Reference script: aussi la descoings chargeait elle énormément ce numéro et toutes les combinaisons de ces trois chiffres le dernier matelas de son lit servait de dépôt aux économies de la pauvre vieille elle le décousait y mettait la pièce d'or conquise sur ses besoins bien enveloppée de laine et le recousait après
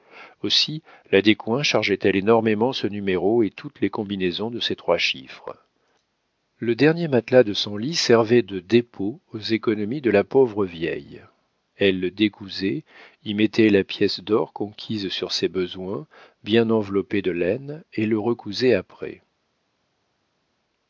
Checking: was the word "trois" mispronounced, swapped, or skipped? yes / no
no